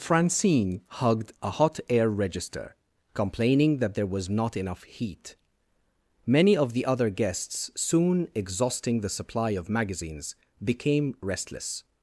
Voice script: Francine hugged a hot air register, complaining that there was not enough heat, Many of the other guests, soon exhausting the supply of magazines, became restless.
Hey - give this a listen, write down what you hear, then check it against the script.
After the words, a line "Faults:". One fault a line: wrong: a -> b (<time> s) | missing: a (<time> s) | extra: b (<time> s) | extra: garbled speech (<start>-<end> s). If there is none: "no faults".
Francine hugged a hot air register, complaining that there was not enough heat, Many of the other guests, soon exhausting the supply of magazines, became restless.
Faults:
no faults